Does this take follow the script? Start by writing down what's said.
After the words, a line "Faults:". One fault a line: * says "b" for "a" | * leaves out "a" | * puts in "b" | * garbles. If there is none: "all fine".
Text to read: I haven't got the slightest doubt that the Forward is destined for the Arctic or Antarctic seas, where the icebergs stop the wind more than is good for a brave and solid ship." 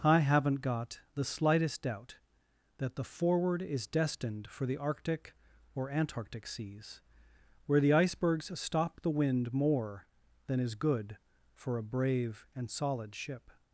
I haven't got the slightest doubt that the Forward is destined for the Arctic or Antarctic seas, where the icebergs stop the wind more than is good for a brave and solid ship."
Faults:
all fine